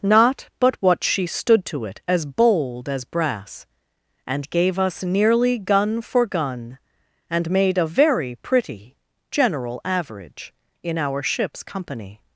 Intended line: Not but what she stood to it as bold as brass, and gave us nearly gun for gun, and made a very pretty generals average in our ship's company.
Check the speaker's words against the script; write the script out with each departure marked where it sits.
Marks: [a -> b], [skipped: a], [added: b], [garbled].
Not but what she stood to it as bold as brass, and gave us nearly gun for gun, and made a very pretty [generals -> general] average in our ship's company.